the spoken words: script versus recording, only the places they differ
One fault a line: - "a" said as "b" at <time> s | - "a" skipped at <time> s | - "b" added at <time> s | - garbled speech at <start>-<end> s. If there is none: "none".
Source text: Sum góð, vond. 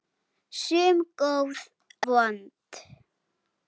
none